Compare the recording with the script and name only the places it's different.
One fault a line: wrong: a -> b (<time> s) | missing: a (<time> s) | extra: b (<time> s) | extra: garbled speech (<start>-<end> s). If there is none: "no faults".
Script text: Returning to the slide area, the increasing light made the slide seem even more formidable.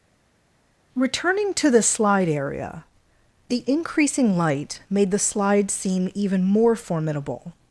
no faults